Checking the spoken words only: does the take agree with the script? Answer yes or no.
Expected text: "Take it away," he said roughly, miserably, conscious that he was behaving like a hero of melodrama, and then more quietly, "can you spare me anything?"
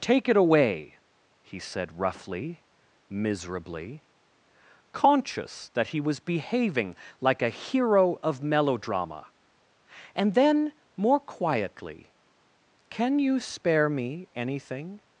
yes